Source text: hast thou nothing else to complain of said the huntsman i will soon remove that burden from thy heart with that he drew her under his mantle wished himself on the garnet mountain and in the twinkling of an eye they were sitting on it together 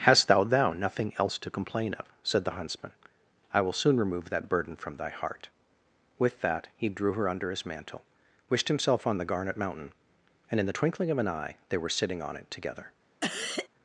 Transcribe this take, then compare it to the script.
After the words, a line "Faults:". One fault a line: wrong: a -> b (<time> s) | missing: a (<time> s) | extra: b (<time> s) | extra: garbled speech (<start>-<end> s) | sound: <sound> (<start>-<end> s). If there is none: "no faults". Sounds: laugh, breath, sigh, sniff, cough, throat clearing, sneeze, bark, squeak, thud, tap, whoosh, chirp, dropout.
hast thou thou nothing else to complain of said the huntsman i will soon remove that burden from thy heart with that he drew her under his mantle wished himself on the garnet mountain and in the twinkling of an eye they were sitting on it together
Faults:
extra: thou (0.4 s)
sound: cough (13.2-13.7 s)